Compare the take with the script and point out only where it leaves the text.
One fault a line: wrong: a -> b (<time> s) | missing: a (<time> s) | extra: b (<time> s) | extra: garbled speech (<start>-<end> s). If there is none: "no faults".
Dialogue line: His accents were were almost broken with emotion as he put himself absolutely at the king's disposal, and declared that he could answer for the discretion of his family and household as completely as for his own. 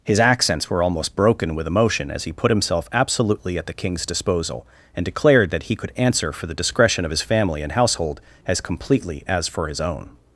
missing: were (0.8 s)